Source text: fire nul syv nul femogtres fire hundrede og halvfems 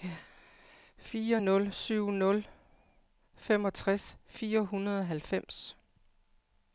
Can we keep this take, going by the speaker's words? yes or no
yes